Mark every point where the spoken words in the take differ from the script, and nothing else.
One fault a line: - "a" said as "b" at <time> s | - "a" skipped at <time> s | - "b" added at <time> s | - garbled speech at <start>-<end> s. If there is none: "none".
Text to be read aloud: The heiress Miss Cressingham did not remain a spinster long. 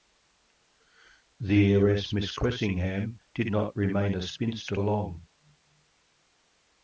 none